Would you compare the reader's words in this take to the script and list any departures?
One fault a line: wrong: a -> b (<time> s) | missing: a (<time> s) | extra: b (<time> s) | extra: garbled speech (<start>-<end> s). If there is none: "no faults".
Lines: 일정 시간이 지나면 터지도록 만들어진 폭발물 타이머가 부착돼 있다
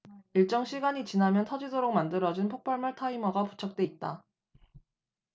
no faults